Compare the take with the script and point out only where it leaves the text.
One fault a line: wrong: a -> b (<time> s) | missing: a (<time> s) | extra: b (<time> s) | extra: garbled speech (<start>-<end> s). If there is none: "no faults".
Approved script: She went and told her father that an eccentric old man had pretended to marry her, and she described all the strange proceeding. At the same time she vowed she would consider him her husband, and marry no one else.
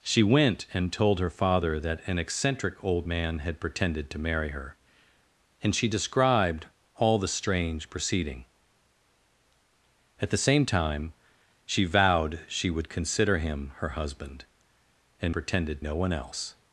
wrong: marry -> pretended (15.3 s)